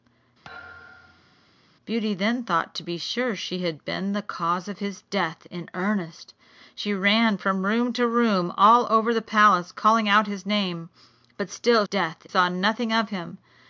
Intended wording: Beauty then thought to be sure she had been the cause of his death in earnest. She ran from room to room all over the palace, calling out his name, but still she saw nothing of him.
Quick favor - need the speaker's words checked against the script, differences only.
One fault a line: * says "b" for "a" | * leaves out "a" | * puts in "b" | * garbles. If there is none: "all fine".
* says "death" for "she"